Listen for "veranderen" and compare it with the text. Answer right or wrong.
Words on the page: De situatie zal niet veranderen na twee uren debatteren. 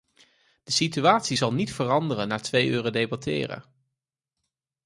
right